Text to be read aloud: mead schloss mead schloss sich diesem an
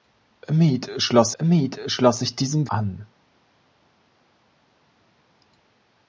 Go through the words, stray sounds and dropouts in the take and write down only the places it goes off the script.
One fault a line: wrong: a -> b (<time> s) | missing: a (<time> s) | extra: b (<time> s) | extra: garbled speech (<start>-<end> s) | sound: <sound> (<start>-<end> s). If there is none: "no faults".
no faults